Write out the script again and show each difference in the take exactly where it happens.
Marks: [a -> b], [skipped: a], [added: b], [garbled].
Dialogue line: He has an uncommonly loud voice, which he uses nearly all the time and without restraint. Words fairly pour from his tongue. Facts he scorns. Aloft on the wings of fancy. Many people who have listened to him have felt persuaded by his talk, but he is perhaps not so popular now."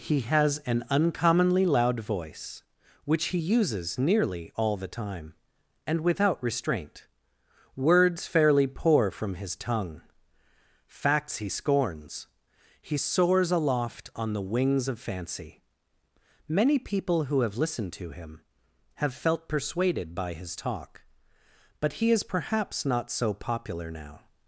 He has an uncommonly loud voice, which he uses nearly all the time and without restraint. Words fairly pour from his tongue. Facts he scorns. [added: He soars] Aloft on the wings of fancy. Many people who have listened to him have felt persuaded by his talk, but he is perhaps not so popular now."